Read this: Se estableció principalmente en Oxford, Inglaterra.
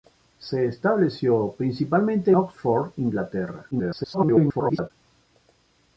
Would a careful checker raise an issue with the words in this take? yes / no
yes